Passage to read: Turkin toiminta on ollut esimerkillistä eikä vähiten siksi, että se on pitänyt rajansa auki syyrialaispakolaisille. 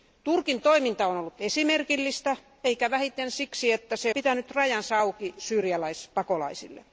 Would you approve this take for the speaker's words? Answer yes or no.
no